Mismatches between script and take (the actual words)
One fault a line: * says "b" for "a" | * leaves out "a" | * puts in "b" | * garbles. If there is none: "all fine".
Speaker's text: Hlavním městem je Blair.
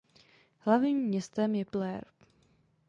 all fine